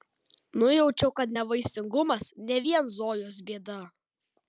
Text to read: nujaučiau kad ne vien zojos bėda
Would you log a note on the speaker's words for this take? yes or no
yes